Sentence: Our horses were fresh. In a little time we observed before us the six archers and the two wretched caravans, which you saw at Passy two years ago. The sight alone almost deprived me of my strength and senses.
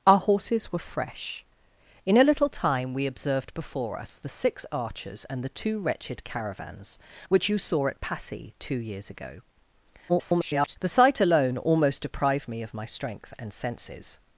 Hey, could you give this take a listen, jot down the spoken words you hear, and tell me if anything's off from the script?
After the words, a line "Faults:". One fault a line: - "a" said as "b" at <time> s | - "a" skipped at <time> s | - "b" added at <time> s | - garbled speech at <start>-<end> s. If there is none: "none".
Our horses were fresh. In a little time we observed before us the six archers and the two wretched caravans, which you saw at Passy two years ago. [garbled] The sight alone almost deprived me of my strength and senses.
Faults:
- garbled speech at 10.1-10.8 s